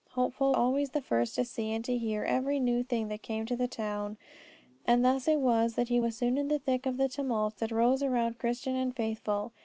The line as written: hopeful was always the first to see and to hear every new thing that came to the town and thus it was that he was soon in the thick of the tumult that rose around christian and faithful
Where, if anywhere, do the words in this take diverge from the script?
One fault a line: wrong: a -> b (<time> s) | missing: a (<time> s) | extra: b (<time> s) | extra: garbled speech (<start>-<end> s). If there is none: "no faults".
missing: was (0.6 s)